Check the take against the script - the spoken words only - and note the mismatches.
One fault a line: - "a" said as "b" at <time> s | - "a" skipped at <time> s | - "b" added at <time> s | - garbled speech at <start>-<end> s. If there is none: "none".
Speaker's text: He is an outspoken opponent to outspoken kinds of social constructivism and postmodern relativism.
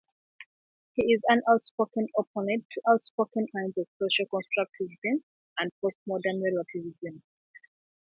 none